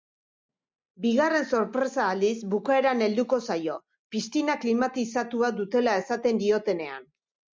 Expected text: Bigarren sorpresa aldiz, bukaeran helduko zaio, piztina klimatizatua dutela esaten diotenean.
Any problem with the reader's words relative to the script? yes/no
no